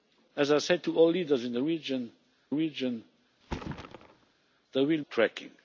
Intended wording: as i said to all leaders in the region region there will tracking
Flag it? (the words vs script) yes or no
no